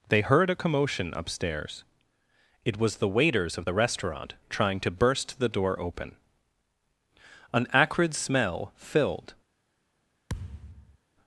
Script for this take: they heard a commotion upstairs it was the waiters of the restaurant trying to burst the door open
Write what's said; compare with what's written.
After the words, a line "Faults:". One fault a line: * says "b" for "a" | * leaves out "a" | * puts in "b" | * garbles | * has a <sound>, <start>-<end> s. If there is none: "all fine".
they heard a commotion upstairs it was the waiters of the restaurant trying to burst the door open an acrid smell filled
Faults:
* puts in "an acrid smell filled"
* has a thud, 10.3-11.0 s